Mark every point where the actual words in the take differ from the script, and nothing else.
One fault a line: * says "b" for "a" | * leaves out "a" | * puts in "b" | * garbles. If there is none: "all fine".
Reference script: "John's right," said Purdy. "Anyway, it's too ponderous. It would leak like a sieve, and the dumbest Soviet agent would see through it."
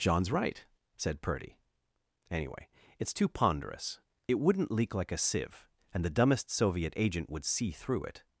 * says "wouldn't" for "would"